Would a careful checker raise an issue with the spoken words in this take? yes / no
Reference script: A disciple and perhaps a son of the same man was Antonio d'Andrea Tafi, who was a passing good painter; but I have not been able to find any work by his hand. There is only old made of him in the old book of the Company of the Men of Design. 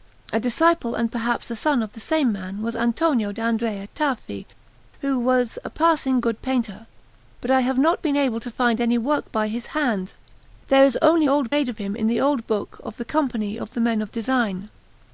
no